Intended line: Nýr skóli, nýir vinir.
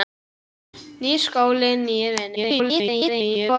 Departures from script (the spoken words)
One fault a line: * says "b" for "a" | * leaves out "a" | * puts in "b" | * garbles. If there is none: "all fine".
* garbles